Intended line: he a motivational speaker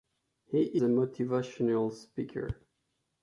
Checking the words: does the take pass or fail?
pass